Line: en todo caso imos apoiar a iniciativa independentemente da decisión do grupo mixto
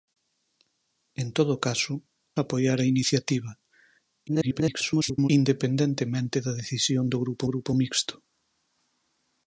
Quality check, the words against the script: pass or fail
fail